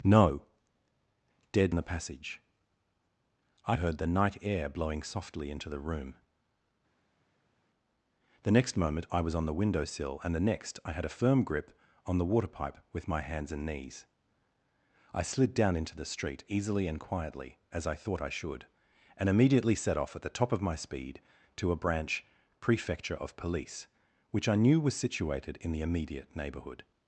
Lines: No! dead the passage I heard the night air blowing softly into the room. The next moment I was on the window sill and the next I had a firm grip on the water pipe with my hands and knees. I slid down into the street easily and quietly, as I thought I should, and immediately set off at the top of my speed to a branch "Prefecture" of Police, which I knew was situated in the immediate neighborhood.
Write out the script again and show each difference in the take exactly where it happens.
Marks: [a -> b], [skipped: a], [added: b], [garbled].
No! dead the passage I heard the night air blowing softly into the room. The next moment I was on the window sill and the next I had a firm grip on the water pipe with my hands and knees. I slid down into the street easily and quietly, as I thought I should, and immediately set off at the top of my speed to a branch "Prefecture" of Police, which I knew was situated in the immediate neighborhood.